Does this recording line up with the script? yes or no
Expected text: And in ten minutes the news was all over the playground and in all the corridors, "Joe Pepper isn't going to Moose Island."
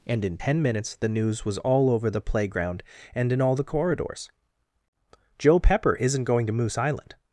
yes